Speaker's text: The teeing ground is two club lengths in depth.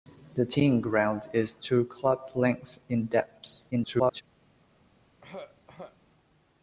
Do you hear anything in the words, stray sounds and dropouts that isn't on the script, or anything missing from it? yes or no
yes